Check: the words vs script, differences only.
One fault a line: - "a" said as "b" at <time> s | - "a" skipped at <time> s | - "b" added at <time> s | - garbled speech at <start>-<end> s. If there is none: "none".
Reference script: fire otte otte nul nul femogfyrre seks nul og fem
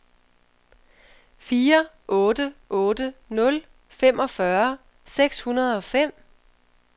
- "nul" skipped at 3.6 s
- "nul" said as "hundrede" at 5.4 s